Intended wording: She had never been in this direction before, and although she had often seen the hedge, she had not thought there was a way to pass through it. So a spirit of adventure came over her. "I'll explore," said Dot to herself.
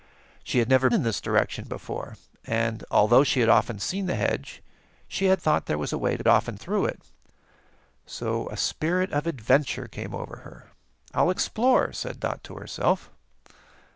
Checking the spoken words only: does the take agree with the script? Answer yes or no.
no